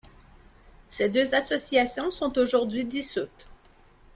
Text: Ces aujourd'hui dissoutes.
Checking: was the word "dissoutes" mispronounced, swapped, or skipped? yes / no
no